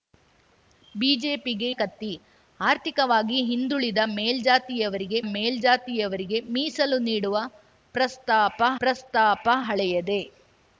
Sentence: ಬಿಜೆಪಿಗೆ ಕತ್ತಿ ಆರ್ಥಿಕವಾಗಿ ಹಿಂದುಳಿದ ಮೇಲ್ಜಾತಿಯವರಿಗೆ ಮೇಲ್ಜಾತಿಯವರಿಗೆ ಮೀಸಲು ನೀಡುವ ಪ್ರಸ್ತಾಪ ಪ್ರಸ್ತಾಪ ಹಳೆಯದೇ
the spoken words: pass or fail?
pass